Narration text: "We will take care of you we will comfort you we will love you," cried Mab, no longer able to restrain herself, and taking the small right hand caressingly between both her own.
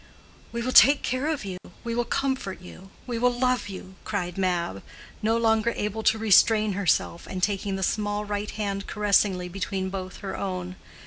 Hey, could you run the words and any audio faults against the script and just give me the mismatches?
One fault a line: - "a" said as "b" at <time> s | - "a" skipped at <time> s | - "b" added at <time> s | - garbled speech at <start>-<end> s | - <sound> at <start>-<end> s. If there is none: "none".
- dropout at 1.6-1.6 s